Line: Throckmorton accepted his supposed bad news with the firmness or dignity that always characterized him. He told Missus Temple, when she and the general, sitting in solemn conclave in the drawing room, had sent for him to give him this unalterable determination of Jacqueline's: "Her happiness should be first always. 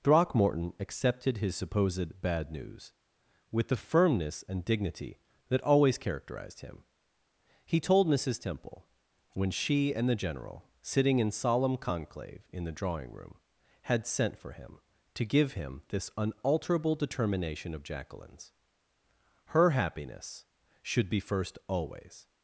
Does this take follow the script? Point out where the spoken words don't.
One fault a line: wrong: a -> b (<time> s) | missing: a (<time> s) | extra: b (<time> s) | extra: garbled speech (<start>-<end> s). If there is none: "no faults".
wrong: or -> and (4.5 s)